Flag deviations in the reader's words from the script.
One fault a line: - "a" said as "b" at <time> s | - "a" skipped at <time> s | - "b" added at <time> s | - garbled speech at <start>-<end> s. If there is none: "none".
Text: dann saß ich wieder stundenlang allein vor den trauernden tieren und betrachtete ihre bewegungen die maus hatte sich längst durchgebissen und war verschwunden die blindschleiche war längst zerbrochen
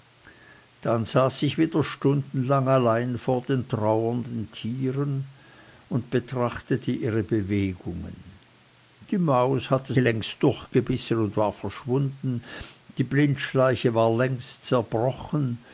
- "sich" skipped at 9.9 s